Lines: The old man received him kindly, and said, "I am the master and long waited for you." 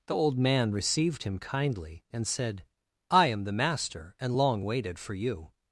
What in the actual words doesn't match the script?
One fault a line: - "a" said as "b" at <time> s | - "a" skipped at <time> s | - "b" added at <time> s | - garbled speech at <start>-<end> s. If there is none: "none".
none